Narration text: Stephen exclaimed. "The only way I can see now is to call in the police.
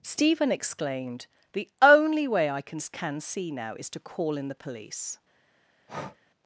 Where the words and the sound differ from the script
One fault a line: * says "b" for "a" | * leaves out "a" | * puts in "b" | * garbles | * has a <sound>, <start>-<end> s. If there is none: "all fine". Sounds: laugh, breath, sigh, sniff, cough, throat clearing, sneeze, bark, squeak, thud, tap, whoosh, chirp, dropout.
* puts in "can"
* has a breath, 5.9-6.2 s